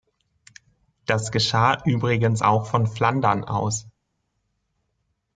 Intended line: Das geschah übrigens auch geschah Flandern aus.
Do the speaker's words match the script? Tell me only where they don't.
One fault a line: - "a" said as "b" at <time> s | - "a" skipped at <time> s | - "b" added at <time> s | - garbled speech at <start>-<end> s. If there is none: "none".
- "geschah" said as "von" at 2.7 s